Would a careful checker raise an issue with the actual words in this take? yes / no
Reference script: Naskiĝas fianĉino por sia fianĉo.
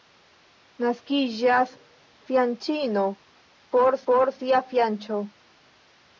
yes